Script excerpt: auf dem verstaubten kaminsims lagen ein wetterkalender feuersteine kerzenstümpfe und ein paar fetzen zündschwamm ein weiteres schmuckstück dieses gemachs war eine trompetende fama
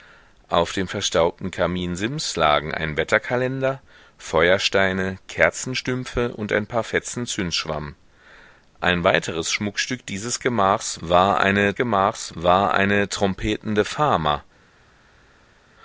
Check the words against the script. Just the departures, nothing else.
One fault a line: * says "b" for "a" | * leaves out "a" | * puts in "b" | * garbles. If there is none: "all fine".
* puts in "gemachs war eine"